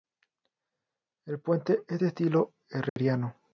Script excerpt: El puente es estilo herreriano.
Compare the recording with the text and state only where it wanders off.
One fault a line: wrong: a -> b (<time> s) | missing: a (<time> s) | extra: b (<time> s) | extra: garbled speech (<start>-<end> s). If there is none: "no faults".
extra: de (2.0 s)